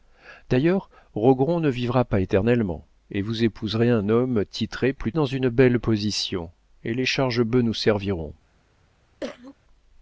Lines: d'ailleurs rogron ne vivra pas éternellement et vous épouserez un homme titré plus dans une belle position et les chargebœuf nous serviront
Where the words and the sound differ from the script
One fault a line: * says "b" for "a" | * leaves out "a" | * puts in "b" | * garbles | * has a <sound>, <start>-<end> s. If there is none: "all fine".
* has a cough, 9.2-9.5 s